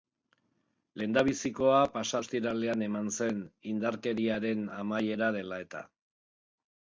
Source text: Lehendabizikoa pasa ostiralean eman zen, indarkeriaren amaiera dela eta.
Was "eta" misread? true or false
false